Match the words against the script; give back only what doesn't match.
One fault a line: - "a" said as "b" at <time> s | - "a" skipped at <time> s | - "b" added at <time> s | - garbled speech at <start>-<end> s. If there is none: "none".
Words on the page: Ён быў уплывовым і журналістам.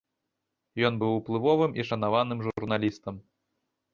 - "шанаваным" added at 1.9 s